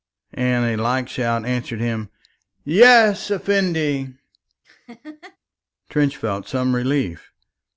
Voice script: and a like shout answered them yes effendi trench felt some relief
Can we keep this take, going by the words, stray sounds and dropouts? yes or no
no